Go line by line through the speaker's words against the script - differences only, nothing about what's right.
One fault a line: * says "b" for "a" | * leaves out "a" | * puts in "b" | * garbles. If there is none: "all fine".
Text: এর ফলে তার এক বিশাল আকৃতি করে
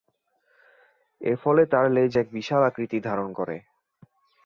* puts in "লেজ"
* puts in "ধারণ"